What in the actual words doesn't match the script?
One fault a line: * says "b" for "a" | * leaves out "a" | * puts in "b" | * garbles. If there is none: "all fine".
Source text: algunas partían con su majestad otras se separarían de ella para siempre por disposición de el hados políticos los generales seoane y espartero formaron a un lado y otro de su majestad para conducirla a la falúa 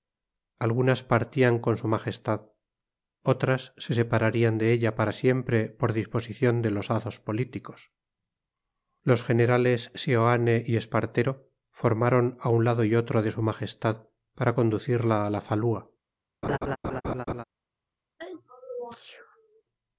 * says "los" for "el"